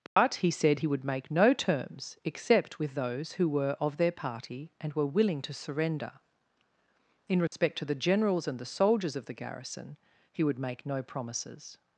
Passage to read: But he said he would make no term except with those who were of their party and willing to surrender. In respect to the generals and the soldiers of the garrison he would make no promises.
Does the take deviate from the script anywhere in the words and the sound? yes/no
yes